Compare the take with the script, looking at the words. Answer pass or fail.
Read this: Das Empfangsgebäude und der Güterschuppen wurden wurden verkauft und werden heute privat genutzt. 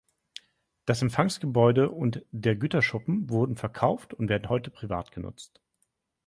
fail